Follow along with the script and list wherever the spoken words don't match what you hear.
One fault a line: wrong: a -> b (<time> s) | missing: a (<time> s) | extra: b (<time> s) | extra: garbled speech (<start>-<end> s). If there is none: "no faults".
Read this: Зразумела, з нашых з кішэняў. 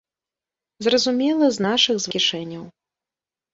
no faults